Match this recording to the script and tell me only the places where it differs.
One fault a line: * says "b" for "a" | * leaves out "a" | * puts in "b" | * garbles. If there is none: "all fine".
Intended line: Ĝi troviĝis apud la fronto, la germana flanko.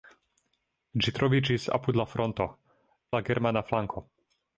all fine